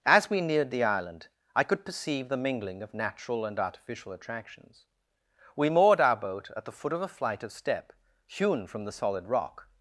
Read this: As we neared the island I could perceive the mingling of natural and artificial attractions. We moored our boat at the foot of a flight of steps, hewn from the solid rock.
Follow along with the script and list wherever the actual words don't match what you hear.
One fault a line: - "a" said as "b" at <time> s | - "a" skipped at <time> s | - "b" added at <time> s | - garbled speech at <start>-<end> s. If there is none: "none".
- "steps" said as "step" at 7.5 s